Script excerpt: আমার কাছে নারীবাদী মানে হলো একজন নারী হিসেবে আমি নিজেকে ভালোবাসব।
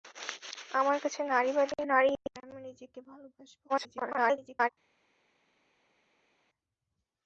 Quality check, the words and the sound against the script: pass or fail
fail